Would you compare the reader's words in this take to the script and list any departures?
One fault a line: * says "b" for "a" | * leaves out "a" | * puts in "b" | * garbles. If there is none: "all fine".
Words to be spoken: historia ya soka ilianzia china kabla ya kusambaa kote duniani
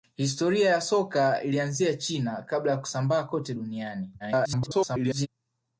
* garbles